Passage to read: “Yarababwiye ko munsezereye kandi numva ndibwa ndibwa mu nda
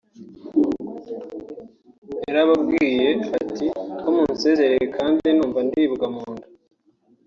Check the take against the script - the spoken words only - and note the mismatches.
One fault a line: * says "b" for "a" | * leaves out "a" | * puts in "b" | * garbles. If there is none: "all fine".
* puts in "ati"
* leaves out "ndibwa"